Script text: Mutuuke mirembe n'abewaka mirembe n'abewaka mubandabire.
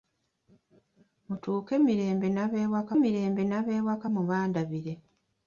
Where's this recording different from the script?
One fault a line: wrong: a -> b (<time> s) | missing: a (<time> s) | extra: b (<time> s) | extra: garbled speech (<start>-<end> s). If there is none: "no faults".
no faults